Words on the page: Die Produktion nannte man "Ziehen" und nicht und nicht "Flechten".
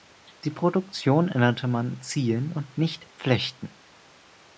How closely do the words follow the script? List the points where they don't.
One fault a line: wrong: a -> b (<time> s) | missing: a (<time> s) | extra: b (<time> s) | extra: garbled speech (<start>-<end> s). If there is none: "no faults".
missing: und nicht (3.1 s)